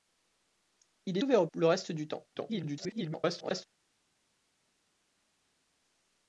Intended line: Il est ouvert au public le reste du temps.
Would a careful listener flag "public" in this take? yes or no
yes